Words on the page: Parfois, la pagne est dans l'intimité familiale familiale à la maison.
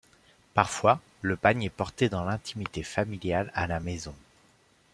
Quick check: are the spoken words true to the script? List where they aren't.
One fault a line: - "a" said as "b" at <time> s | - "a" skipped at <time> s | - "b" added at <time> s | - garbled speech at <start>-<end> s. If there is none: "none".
- "la" said as "le" at 1.2 s
- "porté" added at 1.7 s
- "familiale" skipped at 3.5 s